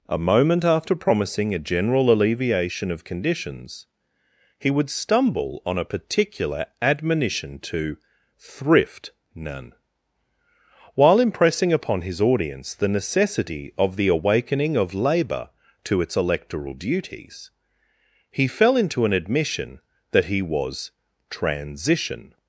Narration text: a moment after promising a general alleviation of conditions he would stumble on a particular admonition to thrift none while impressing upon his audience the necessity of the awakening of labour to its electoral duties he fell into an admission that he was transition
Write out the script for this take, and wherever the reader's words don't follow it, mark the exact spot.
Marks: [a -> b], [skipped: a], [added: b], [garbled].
a moment after promising a general alleviation of conditions he would stumble on a particular admonition to thrift none while impressing upon his audience the necessity of the awakening of labour to its electoral duties he fell into an admission that he was transition